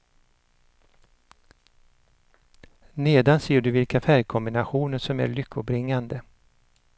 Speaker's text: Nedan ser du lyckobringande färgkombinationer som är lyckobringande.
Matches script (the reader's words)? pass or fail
fail